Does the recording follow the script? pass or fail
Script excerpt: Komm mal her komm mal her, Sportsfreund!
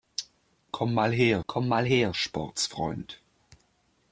pass